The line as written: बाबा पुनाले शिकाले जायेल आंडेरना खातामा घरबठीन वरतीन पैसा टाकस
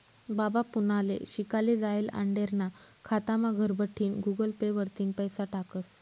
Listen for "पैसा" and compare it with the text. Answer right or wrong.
right